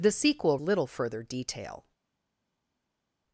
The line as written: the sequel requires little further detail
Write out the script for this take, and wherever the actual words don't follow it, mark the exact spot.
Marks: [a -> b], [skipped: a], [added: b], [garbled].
the sequel [skipped: requires] little further detail